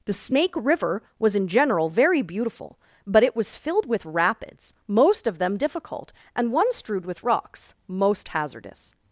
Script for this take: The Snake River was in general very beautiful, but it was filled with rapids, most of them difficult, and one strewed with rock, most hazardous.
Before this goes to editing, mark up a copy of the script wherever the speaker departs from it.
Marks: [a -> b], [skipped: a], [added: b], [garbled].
The Snake River was in general very beautiful, but it was filled with rapids, most of them difficult, and one strewed with [rock, -> rocks] most hazardous.